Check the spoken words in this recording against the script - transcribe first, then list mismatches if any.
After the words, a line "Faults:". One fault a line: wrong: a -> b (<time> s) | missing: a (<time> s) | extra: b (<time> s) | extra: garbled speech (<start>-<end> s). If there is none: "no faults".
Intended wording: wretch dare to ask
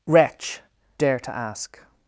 wretch dare to ask
Faults:
no faults